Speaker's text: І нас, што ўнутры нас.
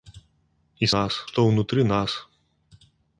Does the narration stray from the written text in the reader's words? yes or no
no